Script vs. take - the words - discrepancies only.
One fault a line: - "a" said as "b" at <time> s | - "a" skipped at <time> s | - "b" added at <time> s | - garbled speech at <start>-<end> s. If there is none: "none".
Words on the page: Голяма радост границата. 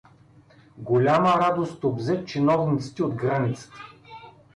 - "обзе чиновниците от" added at 1.8 s